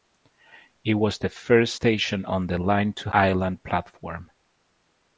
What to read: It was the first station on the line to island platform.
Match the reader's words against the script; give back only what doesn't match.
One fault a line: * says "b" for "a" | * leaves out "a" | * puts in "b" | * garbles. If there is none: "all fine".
all fine